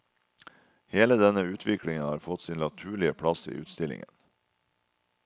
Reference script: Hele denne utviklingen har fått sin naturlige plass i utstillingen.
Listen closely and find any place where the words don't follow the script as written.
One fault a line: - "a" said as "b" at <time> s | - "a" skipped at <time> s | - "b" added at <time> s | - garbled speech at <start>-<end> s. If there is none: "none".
none